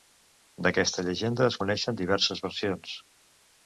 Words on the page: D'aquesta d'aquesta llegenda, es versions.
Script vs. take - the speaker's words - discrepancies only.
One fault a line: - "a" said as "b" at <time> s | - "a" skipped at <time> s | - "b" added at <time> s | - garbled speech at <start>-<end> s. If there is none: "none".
- "d'aquesta" skipped at 1.1 s
- "coneixen diverses" added at 1.6 s